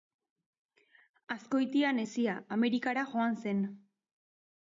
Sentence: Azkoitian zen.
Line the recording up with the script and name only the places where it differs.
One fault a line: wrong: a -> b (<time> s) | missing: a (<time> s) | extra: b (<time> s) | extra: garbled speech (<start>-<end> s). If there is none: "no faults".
extra: hezia Amerikara joan (2.0 s)